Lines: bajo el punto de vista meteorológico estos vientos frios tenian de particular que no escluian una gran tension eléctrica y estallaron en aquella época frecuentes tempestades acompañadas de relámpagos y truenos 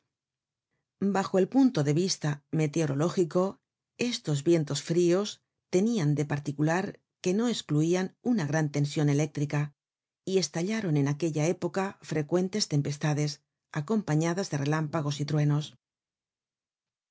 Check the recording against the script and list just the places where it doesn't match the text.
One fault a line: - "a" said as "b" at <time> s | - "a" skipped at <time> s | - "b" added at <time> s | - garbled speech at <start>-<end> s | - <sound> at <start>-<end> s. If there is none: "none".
none